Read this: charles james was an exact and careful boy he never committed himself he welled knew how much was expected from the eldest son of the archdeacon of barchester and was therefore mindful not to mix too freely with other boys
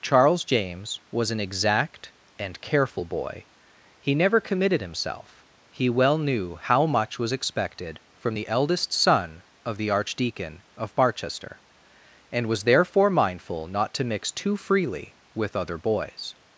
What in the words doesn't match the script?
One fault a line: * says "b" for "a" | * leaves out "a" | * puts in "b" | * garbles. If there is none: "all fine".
* says "well" for "welled"